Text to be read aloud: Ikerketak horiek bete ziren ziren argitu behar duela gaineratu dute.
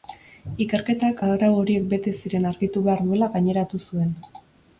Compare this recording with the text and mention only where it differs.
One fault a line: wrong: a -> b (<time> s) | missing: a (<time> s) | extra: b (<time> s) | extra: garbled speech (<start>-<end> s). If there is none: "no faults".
extra: arau (1.3 s)
missing: ziren (2.5 s)
wrong: dute -> zuen (3.9 s)